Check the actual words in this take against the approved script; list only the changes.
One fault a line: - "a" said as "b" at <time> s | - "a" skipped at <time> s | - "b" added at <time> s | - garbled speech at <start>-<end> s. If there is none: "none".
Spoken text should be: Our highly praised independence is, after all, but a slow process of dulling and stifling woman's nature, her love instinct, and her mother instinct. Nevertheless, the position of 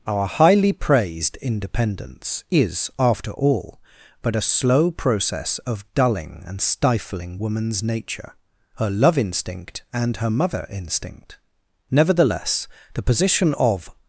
none